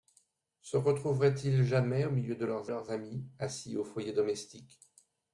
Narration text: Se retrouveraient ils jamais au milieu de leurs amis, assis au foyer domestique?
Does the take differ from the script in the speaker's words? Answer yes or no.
yes